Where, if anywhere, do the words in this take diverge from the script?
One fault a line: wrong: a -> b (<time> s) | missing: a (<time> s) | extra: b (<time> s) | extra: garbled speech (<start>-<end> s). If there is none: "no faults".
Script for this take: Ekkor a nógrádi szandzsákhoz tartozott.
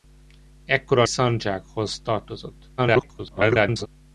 missing: nógrádi (1.1 s)
extra: garbled speech (2.8-3.9 s)